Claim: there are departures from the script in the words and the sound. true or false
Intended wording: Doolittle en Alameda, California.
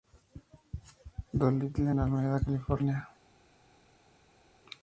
false